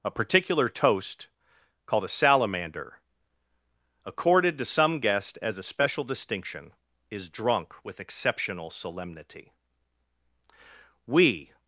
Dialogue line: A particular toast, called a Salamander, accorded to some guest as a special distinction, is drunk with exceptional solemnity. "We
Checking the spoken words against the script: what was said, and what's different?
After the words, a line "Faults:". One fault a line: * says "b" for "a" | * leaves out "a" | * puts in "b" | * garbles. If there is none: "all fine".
A particular toast, called a Salamander, accorded to some guest as a special distinction, is drunk with exceptional solemnity. "We
Faults:
all fine